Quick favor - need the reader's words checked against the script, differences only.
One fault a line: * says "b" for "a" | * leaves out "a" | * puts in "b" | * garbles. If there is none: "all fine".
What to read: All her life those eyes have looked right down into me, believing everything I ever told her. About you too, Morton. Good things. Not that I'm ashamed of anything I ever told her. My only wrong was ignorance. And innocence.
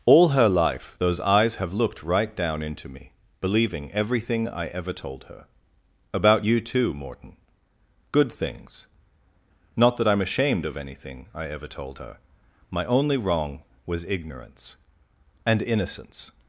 all fine